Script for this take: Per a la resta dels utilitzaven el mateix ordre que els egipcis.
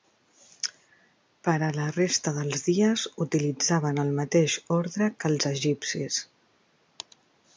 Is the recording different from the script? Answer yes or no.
yes